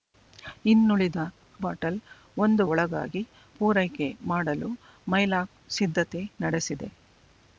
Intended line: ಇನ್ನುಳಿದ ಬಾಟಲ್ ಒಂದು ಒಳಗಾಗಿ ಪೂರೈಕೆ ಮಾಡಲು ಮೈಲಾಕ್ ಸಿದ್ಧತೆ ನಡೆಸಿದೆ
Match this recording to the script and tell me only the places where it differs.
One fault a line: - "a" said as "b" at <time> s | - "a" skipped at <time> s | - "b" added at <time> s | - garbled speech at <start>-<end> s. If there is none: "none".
none